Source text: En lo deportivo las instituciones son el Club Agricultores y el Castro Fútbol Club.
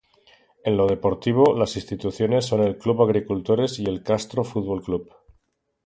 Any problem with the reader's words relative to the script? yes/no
no